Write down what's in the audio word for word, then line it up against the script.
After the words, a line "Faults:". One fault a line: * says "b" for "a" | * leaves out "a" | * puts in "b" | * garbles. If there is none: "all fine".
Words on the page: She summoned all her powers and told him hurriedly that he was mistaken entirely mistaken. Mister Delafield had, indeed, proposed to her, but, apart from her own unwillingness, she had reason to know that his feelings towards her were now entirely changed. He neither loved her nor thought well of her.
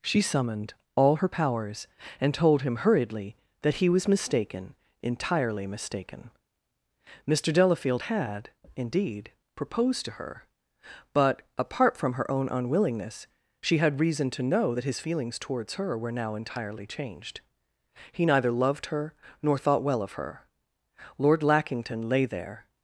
She summoned all her powers and told him hurriedly that he was mistaken entirely mistaken. Mister Delafield had, indeed, proposed to her, but, apart from her own unwillingness, she had reason to know that his feelings towards her were now entirely changed. He neither loved her nor thought well of her. Lord Lackington lay there
Faults:
* puts in "Lord Lackington lay there"